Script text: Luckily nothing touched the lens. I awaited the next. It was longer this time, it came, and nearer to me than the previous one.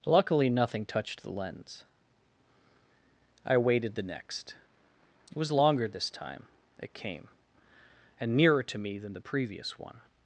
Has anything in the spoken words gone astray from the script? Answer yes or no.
no